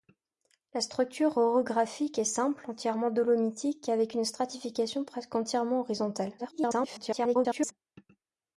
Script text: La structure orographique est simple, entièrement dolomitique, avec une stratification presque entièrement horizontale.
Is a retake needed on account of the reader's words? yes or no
yes